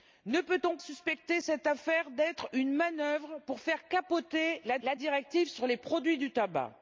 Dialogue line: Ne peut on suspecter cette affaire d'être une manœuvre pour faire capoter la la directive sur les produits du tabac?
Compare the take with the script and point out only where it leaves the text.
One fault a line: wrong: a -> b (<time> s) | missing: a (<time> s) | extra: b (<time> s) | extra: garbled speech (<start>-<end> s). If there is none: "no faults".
no faults